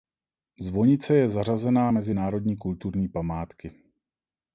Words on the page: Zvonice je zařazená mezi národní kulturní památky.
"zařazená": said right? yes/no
yes